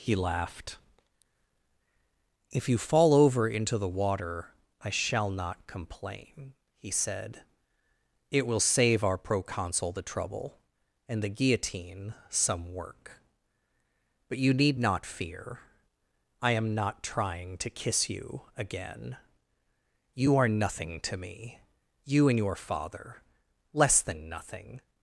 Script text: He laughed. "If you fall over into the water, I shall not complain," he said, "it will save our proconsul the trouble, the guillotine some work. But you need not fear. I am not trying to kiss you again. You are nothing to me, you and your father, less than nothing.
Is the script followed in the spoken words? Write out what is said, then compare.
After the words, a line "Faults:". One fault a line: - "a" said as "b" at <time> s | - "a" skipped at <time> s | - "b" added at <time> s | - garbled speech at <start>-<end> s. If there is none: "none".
He laughed. "If you fall over into the water, I shall not complain," he said, "it will save our proconsul the trouble, and the guillotine some work. But you need not fear. I am not trying to kiss you again. You are nothing to me, you and your father, less than nothing.
Faults:
- "and" added at 11.1 s